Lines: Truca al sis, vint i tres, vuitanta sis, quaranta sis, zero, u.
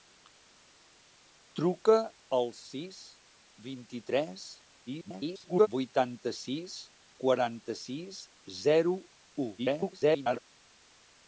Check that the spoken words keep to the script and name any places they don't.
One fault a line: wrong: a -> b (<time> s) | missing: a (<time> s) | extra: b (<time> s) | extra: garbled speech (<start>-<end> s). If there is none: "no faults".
extra: garbled speech (4.9-5.7 s)
extra: garbled speech (9.6-10.4 s)